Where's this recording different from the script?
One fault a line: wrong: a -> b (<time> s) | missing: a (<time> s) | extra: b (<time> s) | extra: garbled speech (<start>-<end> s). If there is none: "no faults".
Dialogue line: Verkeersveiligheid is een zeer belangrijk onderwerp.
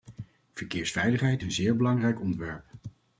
missing: is (1.4 s)